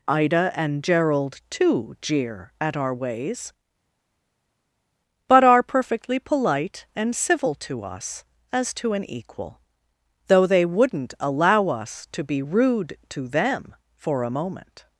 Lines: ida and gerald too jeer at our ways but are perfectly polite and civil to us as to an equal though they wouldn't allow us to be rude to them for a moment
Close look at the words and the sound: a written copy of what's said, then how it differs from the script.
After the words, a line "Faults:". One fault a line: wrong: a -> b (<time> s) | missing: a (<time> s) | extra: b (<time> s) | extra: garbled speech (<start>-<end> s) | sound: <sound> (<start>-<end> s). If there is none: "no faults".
ida and gerald too jeer at our ways but are perfectly polite and civil to us as to an equal though they wouldn't allow us to be rude to them for a moment
Faults:
no faults